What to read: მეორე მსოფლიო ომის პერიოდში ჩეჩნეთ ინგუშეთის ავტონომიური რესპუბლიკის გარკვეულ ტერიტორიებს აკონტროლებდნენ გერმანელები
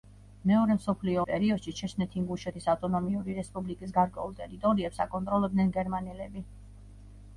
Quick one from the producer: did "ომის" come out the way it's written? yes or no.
no